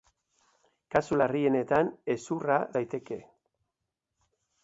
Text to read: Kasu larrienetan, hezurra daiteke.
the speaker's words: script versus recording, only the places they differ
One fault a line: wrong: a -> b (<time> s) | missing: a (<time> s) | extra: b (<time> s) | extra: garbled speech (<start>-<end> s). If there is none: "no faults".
no faults